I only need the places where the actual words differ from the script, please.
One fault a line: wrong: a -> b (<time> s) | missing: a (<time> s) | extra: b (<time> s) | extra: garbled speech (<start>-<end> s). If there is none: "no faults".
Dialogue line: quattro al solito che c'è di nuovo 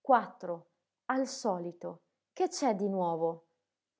no faults